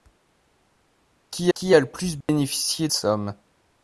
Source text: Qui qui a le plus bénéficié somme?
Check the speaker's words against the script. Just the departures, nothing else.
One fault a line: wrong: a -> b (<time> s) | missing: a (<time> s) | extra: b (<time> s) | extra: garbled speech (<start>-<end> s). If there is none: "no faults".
no faults